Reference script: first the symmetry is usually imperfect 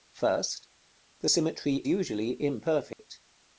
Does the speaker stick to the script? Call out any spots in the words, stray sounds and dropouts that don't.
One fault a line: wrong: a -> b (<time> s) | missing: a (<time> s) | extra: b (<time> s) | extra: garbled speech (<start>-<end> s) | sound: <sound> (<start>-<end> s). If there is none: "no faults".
missing: is (1.8 s)
sound: dropout (2.9-3.0 s)